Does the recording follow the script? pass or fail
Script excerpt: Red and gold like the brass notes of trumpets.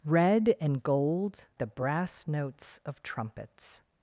fail